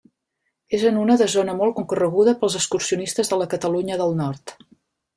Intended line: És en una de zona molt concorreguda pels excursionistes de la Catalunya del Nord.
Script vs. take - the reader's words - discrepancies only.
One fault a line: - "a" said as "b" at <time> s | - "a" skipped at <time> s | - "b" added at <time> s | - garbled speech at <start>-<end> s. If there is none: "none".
none